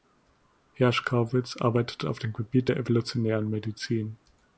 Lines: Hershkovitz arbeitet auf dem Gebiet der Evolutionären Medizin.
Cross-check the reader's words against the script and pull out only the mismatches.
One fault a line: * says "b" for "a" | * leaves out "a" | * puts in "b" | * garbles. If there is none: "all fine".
all fine